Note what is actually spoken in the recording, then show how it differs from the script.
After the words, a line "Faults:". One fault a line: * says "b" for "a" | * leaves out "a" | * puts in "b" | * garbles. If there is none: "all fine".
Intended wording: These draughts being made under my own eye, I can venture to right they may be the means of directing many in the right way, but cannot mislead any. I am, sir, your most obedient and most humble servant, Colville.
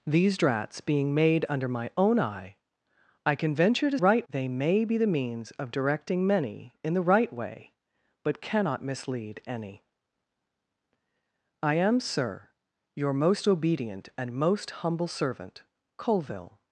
These draughts being made under my own eye, I can venture to right they may be the means of directing many in the right way, but cannot mislead any. I am, sir, your most obedient and most humble servant, Colville.
Faults:
all fine